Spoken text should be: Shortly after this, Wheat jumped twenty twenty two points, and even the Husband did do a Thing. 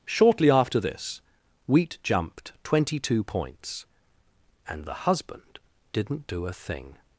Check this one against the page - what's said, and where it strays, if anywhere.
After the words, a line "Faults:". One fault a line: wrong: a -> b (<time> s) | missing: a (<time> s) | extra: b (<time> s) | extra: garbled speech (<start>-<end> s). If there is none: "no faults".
Shortly after this, Wheat jumped twenty two points, and the Husband didn't do a Thing.
Faults:
missing: twenty (3.0 s)
missing: even (4.8 s)
wrong: did -> didn't (5.9 s)